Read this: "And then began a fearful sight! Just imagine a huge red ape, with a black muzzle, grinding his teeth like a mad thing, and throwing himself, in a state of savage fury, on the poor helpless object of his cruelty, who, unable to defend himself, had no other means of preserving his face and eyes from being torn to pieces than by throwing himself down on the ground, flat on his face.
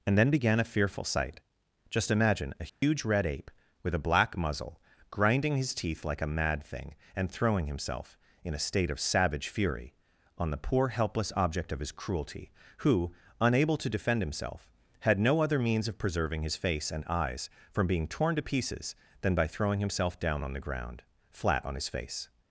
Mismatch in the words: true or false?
false